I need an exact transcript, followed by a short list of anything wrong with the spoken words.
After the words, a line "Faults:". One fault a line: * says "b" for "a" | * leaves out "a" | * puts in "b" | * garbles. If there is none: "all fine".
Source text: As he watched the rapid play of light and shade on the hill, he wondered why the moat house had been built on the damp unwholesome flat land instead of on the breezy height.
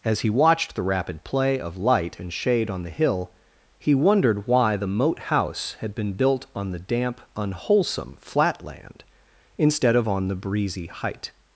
As he watched the rapid play of light and shade on the hill, he wondered why the moat house had been built on the damp unwholesome flat land instead of on the breezy height.
Faults:
all fine